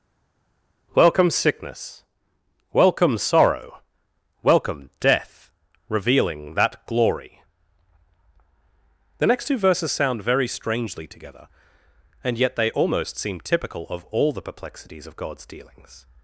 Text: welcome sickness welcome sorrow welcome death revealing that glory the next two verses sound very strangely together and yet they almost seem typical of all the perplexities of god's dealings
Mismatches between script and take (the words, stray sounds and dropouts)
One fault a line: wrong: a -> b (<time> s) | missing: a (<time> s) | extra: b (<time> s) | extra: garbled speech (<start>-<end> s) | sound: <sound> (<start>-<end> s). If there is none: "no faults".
no faults